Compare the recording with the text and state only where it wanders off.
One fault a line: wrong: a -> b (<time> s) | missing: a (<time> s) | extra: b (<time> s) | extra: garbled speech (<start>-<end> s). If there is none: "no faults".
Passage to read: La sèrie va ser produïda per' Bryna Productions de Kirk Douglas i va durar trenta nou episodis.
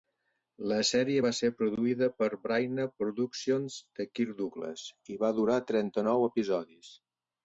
no faults